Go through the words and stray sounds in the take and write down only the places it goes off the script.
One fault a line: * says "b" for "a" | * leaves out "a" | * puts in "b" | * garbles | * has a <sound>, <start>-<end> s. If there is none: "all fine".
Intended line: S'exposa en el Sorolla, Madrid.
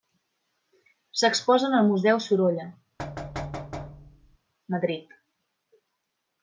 * puts in "Museu"
* has a thud, 3.0-4.4 s